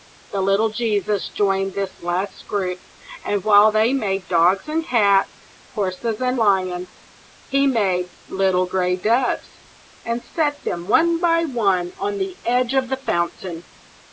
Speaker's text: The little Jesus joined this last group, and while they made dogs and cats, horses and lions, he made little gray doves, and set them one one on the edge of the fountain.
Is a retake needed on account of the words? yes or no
yes